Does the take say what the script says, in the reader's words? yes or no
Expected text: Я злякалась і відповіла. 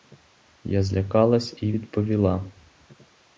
yes